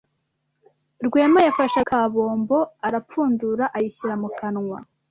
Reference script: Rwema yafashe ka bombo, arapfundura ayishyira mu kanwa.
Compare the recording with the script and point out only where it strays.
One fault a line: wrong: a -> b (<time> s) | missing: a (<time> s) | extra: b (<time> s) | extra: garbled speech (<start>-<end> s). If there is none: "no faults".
no faults